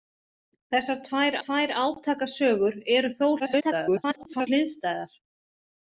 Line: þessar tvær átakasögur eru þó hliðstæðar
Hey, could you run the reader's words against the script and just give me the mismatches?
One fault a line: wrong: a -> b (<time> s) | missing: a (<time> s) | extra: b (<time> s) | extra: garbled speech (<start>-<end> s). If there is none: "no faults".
extra: tvær (1.4 s)
extra: garbled speech (3.4-4.5 s)